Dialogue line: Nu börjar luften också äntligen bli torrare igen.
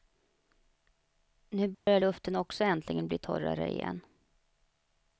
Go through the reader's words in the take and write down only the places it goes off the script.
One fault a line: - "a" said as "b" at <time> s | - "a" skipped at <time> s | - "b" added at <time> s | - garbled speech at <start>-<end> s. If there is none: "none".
none